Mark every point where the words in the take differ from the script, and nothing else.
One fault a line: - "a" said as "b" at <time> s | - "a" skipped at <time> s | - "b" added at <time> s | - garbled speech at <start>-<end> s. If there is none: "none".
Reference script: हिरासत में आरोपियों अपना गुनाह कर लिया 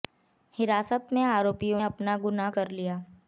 none